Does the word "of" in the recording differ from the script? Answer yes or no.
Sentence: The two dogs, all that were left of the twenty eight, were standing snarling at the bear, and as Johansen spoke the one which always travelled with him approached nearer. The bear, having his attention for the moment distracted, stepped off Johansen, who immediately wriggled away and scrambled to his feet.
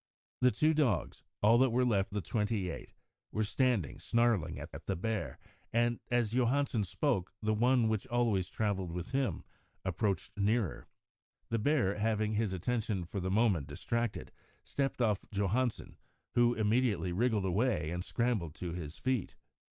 yes